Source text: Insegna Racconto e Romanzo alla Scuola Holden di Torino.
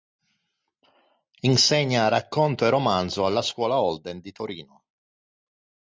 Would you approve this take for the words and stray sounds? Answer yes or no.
yes